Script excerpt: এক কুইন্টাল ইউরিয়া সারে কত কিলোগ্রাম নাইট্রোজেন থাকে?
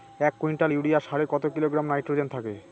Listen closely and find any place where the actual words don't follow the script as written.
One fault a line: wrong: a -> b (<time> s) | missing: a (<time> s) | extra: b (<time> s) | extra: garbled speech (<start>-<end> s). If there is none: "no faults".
no faults